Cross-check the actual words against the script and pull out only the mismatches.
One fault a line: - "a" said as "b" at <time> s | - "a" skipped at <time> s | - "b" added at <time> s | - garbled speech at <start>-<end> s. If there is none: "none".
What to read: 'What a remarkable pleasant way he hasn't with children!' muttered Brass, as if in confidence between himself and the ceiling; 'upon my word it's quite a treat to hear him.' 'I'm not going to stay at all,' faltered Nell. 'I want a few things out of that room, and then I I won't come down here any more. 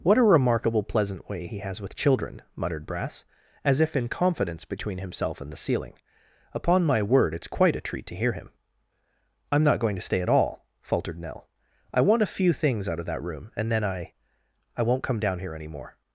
- "hasn't" said as "has" at 1.6 s